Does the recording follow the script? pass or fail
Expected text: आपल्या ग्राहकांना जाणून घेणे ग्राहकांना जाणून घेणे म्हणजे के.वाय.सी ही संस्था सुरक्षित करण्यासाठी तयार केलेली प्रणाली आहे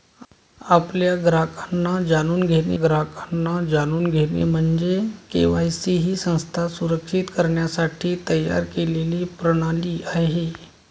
pass